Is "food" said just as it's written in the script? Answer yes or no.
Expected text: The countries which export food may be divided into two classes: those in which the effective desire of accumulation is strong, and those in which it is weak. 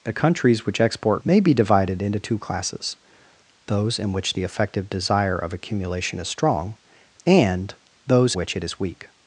no